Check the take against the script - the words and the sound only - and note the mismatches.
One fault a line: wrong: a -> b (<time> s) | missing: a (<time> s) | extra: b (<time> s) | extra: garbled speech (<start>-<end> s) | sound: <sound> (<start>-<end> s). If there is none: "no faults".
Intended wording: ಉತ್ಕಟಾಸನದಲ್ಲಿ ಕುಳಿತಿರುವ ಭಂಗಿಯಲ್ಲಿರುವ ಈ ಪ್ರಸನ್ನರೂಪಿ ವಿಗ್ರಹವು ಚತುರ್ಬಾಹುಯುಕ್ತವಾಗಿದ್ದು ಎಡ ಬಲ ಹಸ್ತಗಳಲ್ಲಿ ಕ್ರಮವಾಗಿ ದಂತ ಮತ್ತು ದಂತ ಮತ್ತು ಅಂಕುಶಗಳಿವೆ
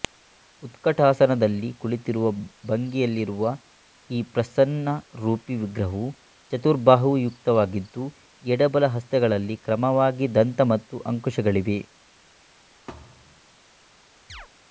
missing: ದಂತ ಮತ್ತು (11.0 s)
sound: thud (12.9-13.4 s)
sound: chirp (14.3-14.5 s)